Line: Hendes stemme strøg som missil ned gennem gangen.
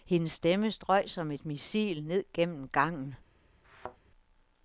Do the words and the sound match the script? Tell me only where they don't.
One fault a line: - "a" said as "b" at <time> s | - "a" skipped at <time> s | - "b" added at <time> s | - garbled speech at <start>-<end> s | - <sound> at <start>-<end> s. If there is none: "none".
- "et" added at 1.3 s
- thud at 3.6-4.0 s